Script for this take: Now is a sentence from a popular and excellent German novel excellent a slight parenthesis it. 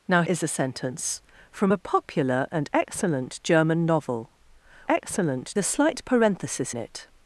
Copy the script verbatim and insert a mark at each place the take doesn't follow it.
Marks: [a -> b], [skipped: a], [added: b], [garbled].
Now is a sentence from a popular and excellent German novel excellent a slight parenthesis it.